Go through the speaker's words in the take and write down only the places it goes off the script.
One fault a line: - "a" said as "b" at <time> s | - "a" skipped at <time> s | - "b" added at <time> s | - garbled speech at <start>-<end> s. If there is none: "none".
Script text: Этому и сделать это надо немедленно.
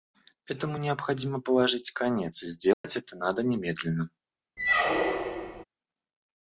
- "необходимо положить конец" added at 0.8 s